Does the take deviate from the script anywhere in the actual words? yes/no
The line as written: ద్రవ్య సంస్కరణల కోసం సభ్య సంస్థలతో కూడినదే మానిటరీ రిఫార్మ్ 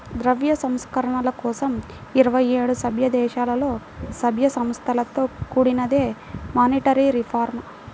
yes